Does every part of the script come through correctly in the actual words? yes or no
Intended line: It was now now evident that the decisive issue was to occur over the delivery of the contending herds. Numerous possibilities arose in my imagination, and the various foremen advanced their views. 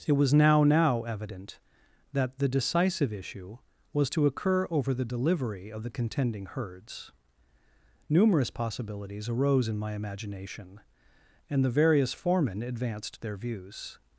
yes